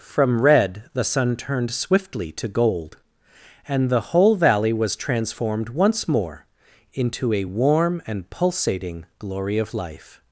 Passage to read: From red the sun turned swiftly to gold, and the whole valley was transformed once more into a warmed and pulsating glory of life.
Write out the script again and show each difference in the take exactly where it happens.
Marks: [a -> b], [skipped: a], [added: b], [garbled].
From red the sun turned swiftly to gold, and the whole valley was transformed once more into a [warmed -> warm] and pulsating glory of life.